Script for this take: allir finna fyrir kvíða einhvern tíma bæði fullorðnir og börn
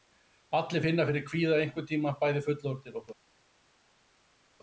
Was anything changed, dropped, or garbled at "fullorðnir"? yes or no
no